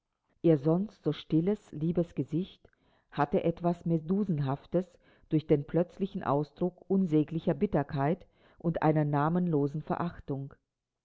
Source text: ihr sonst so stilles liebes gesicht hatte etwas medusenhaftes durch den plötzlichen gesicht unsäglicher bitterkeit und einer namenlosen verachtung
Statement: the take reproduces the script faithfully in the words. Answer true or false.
false